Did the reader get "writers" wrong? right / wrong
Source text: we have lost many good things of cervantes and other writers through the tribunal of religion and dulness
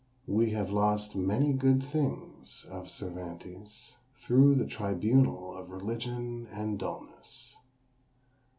wrong